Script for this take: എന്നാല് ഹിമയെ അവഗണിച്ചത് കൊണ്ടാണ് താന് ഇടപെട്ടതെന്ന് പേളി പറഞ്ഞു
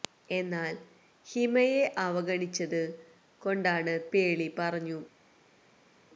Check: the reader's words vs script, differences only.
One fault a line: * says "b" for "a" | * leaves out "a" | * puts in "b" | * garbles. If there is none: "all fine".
* leaves out "താന് ഇടപെട്ടതെന്ന്"